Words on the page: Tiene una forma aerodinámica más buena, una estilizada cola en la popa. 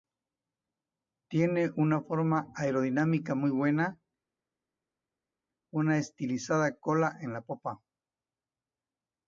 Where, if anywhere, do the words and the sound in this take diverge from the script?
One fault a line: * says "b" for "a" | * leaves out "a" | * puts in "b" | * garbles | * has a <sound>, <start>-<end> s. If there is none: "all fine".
* says "muy" for "más"